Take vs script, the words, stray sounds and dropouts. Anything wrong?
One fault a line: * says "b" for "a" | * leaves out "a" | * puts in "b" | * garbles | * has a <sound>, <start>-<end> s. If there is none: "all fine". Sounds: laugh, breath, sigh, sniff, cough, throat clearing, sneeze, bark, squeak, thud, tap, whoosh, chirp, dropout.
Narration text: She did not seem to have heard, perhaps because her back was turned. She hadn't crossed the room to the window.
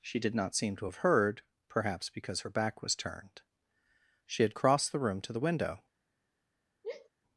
* says "had" for "hadn't"
* has a sigh, 6.8-7.1 s